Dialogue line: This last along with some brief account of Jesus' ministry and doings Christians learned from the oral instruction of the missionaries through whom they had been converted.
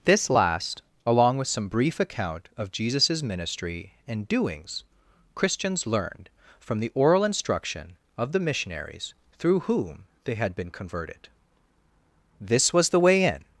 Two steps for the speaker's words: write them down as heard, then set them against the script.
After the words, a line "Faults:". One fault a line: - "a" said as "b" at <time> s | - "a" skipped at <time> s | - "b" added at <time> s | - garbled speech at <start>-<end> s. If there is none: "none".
This last along with some brief account of Jesus' ministry and doings Christians learned from the oral instruction of the missionaries through whom they had been converted. This was the way in
Faults:
- "This was the way in" added at 12.4 s